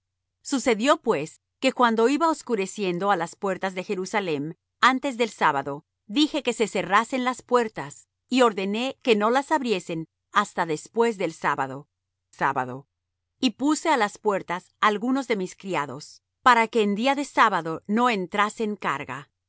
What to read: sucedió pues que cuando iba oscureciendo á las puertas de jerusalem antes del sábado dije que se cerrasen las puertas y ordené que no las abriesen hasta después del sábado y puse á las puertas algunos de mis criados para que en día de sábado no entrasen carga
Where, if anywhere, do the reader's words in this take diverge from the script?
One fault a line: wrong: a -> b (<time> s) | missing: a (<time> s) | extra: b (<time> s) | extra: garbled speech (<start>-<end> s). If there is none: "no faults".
extra: sábado (12.3 s)